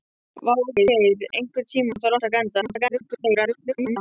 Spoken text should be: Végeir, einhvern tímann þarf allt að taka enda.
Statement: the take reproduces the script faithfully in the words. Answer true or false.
false